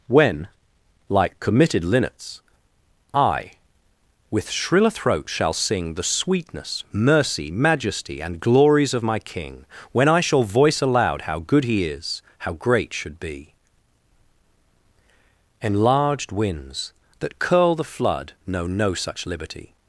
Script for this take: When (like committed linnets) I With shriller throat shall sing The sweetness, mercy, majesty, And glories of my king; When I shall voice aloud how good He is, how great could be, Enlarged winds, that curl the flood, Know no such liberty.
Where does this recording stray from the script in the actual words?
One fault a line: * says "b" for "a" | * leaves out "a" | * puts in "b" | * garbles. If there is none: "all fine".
* says "should" for "could"